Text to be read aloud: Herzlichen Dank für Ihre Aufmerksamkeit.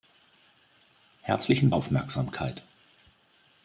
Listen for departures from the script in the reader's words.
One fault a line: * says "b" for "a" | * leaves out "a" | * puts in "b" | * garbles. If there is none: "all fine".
* leaves out "Dank für Ihre"